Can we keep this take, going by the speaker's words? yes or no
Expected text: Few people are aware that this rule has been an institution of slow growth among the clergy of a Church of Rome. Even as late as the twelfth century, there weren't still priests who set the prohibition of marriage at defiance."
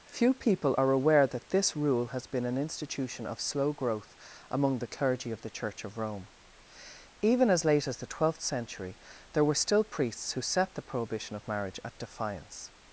no